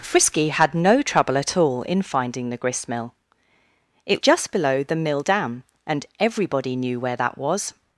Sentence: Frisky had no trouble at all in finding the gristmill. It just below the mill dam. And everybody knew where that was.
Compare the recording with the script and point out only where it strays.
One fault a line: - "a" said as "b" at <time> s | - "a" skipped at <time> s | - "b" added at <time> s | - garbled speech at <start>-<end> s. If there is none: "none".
none